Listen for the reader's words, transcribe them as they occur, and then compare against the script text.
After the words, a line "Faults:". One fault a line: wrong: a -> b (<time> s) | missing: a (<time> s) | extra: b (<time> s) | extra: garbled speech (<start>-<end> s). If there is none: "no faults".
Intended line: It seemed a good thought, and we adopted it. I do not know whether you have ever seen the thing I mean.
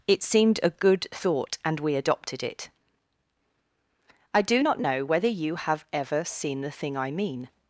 It seemed a good thought, and we adopted it. I do not know whether you have ever seen the thing I mean.
Faults:
no faults